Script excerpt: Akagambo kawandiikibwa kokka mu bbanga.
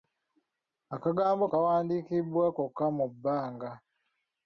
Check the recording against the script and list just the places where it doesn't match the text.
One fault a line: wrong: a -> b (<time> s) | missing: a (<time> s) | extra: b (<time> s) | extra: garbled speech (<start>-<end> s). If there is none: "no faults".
no faults